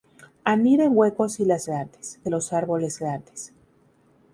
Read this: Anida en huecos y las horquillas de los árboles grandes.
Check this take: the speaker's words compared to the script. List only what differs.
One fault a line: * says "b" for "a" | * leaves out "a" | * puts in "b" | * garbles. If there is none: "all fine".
* says "grandes" for "horquillas"